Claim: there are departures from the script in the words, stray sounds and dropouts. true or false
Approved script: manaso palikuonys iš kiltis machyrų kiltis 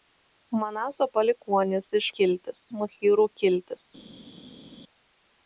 false